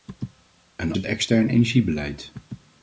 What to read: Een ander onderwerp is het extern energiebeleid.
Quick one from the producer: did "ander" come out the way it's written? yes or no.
no